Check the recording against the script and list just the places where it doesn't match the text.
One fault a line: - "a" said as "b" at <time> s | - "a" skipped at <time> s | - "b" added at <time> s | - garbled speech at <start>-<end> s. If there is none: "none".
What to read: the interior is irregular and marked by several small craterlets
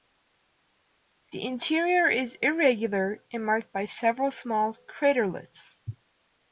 none